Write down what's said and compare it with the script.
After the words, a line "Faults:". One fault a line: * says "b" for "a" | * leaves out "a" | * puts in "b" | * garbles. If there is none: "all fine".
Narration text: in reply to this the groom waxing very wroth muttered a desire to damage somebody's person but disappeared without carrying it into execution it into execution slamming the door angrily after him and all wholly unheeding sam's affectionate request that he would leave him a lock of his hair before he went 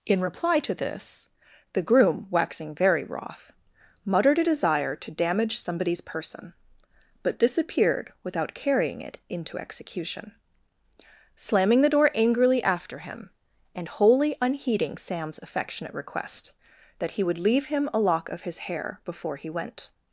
in reply to this the groom waxing very wroth muttered a desire to damage somebody's person but disappeared without carrying it into execution slamming the door angrily after him and wholly unheeding sam's affectionate request that he would leave him a lock of his hair before he went
Faults:
* leaves out "it into execution"
* leaves out "all"